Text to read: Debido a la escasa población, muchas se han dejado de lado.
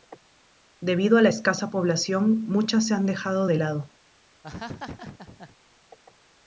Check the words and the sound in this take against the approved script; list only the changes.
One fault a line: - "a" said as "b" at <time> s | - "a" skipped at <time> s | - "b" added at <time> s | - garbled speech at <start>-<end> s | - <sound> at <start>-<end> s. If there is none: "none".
- laugh at 4.4-5.6 s